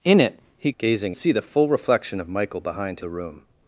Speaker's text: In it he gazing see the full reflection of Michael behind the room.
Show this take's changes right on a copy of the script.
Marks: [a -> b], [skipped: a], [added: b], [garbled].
In it he gazing see the full reflection of Michael behind the room.